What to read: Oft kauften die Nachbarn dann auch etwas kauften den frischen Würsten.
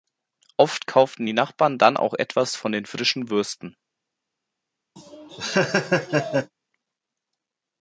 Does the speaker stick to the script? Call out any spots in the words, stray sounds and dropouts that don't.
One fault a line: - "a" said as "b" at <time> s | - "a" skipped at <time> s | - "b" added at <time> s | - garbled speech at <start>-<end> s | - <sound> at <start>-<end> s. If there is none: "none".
- "kauften" said as "von" at 2.6 s
- laugh at 5.0-6.5 s